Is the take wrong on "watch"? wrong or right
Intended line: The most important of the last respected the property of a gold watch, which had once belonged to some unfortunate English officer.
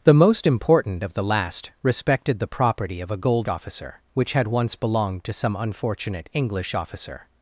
wrong